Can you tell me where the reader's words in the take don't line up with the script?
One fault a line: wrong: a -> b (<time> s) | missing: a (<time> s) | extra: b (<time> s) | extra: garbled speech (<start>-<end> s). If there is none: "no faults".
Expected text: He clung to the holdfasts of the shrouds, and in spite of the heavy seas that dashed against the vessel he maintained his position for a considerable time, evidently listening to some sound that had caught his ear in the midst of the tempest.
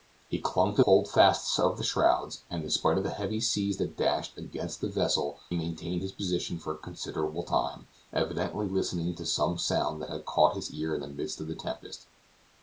missing: the (0.8 s)
missing: he (5.4 s)